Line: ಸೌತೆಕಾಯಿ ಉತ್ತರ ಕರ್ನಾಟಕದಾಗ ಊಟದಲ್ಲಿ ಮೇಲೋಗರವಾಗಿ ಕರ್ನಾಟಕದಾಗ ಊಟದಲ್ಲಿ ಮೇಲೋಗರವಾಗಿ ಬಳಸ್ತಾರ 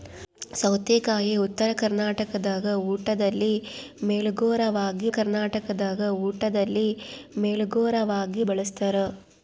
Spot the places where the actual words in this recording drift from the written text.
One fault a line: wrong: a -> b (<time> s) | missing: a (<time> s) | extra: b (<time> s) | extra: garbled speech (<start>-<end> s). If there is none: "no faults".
no faults